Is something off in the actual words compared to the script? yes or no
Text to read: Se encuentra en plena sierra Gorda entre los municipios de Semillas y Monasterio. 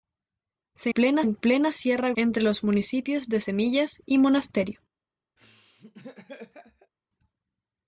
yes